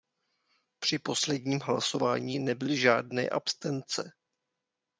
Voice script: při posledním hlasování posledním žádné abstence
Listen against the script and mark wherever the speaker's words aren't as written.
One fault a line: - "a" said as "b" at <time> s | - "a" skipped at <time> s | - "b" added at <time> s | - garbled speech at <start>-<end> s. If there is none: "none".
- "posledním" said as "nebyly" at 2.4 s